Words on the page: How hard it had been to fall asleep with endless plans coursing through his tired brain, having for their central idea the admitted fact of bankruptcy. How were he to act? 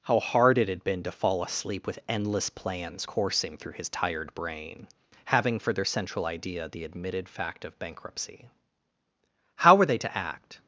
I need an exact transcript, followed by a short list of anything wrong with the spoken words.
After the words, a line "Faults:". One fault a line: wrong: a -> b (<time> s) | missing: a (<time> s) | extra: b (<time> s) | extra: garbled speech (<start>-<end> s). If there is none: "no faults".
How hard it had been to fall asleep with endless plans coursing through his tired brain, having for their central idea the admitted fact of bankruptcy. How were they to act?
Faults:
wrong: he -> they (9.9 s)